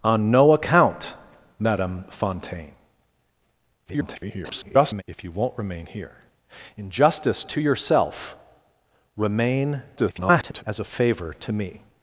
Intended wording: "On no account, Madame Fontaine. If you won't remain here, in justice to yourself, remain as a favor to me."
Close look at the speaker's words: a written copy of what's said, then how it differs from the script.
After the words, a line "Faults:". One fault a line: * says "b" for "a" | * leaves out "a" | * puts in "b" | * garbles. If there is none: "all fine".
"On no account, Madame Fontaine. [garbled] If you won't remain here, in justice to yourself, remain [garbled] as a favor to me."
Faults:
* garbles
* garbles